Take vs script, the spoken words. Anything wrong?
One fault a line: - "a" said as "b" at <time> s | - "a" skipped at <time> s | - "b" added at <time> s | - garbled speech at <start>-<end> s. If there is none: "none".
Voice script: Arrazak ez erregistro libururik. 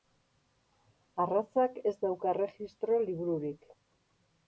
- "dauka" added at 2.1 s